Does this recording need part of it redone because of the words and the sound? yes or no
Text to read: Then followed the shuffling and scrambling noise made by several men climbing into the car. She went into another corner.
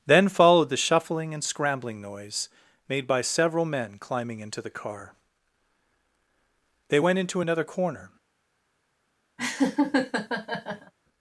yes